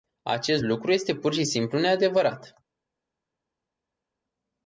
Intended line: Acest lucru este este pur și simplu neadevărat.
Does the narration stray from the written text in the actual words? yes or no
yes